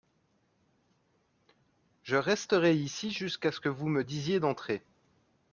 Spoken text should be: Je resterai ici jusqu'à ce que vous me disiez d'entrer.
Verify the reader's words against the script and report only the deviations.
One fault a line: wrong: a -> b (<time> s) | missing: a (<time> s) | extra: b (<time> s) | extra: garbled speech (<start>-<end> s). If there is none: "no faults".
no faults